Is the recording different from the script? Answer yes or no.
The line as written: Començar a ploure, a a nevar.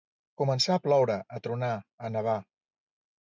yes